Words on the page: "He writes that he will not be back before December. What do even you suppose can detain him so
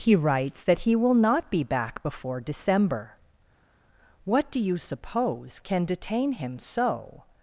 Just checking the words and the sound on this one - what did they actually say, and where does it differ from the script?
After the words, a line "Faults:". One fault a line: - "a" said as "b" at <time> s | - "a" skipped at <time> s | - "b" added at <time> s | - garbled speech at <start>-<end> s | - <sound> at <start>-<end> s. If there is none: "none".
"He writes that he will not be back before December. What do you suppose can detain him so
Faults:
- "even" skipped at 4.6 s